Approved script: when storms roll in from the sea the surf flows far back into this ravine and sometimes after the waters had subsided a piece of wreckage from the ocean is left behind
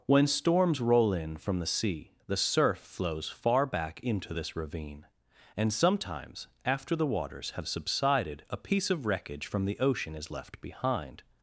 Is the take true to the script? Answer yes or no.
no